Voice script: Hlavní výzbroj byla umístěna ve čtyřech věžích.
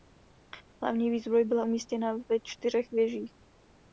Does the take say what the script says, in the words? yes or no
yes